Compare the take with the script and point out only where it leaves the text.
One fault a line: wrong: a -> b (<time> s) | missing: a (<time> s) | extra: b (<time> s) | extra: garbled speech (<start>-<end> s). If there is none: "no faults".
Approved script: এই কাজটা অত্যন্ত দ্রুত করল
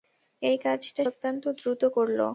no faults